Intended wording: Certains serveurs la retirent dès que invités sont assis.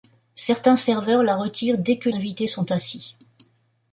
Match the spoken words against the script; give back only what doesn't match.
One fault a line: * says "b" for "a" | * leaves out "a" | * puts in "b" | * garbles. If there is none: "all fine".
all fine